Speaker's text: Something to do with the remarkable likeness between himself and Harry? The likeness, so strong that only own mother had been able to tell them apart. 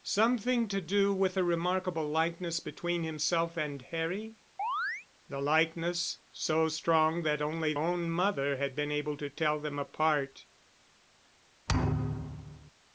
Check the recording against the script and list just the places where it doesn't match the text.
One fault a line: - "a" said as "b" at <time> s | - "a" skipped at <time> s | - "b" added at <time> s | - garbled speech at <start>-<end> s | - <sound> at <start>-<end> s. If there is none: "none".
- chirp at 4.6-5.1 s
- thud at 11.7-12.7 s